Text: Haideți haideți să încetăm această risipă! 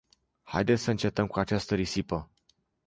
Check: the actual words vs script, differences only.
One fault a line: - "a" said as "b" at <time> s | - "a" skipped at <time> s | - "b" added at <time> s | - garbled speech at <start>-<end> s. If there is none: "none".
- "haideți" skipped at 0.8 s
- "cu" added at 1.3 s